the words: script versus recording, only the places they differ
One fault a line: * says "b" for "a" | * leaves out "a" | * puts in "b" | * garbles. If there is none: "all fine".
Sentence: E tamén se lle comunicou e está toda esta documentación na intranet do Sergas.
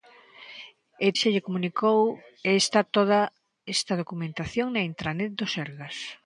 * leaves out "tamén"